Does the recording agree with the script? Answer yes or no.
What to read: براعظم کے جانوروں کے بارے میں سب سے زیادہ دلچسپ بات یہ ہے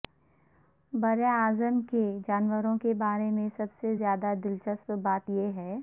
yes